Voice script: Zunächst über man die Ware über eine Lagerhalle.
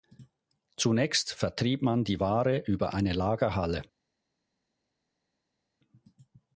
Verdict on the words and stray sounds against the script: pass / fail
fail